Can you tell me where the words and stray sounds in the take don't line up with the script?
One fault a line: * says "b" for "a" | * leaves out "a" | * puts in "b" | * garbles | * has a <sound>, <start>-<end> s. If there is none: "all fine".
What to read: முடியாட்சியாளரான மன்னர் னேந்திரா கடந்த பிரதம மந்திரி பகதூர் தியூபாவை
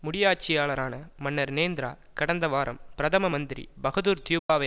* puts in "வாரம்"
* has a dropout, 4.4-4.5 s